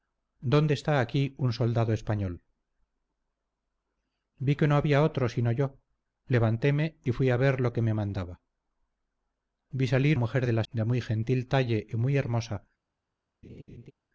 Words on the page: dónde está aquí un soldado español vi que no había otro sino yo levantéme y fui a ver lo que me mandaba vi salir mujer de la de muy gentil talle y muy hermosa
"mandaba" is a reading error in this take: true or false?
false